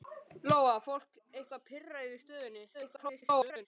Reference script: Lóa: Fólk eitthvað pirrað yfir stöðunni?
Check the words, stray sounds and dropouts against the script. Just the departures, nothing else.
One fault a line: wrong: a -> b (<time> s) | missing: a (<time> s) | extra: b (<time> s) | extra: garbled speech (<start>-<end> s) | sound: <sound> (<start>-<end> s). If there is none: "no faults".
extra: garbled speech (2.7-3.7 s)